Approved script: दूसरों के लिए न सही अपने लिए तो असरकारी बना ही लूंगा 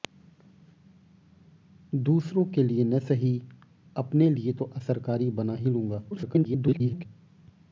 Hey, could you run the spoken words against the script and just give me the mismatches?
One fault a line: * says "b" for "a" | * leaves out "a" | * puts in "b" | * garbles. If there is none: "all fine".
* garbles